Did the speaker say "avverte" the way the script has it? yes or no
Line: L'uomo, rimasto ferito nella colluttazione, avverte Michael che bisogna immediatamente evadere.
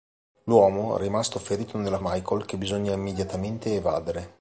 no